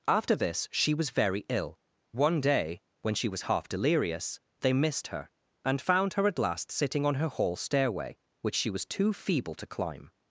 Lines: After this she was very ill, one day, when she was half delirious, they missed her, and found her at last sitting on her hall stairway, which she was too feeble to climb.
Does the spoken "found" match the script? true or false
true